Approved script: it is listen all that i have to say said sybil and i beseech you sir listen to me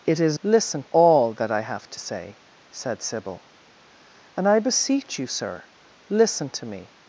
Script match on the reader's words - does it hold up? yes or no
yes